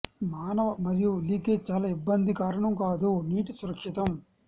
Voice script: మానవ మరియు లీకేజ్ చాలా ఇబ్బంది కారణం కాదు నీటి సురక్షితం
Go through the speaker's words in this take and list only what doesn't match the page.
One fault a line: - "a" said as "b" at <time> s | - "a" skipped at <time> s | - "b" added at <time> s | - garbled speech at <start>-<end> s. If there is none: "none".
none